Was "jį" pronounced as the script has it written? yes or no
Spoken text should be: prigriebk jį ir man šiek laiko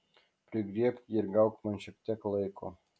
yes